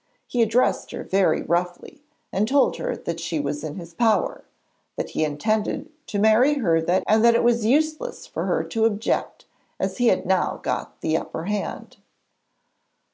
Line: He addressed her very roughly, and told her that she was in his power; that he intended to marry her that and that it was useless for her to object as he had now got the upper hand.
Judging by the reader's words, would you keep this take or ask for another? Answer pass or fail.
pass